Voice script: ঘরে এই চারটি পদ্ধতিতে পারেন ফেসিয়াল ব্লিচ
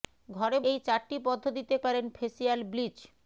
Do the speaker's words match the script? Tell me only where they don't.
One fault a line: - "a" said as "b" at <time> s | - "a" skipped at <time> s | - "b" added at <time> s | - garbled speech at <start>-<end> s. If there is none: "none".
none